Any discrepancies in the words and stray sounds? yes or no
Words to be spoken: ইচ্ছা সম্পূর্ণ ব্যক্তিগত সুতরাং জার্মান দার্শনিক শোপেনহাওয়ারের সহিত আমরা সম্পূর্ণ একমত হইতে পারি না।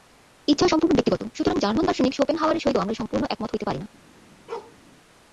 yes